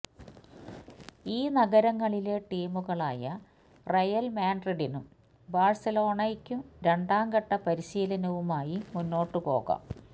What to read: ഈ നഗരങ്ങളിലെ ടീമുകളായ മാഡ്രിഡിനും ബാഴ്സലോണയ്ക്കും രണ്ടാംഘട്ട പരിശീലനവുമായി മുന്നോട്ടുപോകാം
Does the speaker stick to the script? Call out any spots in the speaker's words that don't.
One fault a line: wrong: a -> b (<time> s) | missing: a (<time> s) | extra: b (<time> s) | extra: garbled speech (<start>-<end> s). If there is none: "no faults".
extra: റയല് (3.9 s)